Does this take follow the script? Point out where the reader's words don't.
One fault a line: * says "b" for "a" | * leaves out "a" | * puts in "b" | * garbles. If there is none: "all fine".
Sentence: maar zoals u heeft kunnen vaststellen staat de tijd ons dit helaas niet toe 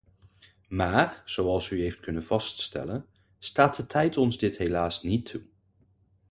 all fine